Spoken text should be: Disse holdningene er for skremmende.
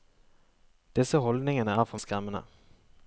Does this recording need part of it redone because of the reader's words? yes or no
no